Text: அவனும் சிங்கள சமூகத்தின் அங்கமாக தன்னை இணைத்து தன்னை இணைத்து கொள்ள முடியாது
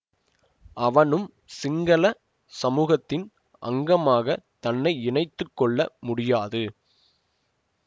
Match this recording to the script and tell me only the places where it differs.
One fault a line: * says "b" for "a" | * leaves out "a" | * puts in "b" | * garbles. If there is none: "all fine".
* leaves out "தன்னை இணைத்து"